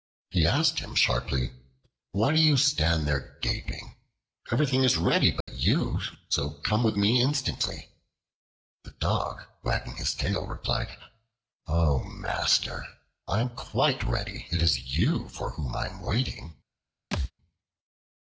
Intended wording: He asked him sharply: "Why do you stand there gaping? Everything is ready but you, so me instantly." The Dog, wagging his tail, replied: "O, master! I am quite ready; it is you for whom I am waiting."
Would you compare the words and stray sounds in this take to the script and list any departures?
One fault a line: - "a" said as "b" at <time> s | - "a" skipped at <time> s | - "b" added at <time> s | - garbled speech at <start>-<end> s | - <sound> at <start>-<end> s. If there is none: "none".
- dropout at 5.4-5.5 s
- "come with" added at 6.6 s
- thud at 17.1-17.3 s